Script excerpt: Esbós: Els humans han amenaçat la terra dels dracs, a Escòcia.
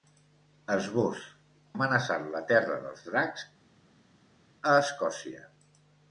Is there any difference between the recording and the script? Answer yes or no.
yes